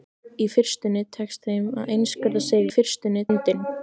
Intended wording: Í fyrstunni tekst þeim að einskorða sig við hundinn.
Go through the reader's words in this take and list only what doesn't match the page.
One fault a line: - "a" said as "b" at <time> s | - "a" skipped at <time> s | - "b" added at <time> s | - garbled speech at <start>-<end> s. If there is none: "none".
- "við" said as "fyrstunni" at 2.7 s